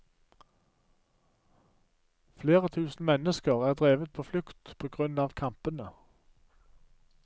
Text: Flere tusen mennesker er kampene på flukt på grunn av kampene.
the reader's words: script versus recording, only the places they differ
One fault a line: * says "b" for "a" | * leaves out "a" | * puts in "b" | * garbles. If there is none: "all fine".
* says "drevet" for "kampene"